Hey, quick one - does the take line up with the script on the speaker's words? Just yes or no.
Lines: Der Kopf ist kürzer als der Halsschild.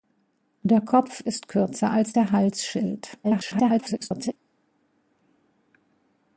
no